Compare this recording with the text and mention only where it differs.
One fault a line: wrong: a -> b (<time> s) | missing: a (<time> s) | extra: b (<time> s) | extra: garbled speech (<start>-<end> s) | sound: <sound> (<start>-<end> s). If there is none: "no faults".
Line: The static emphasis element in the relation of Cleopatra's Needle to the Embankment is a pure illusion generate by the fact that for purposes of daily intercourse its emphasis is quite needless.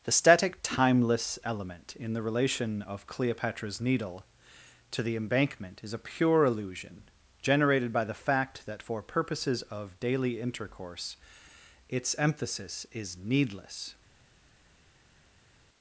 wrong: emphasis -> timeless (0.6 s)
wrong: generate -> generated (7.4 s)
missing: quite (13.2 s)